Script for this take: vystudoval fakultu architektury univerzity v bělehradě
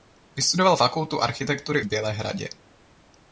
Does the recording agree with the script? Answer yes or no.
no